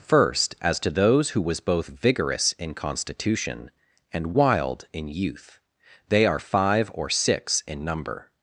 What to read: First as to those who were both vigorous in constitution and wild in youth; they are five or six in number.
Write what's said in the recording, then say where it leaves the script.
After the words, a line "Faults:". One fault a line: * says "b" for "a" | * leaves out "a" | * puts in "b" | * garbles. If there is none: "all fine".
First as to those who was both vigorous in constitution and wild in youth; they are five or six in number.
Faults:
* says "was" for "were"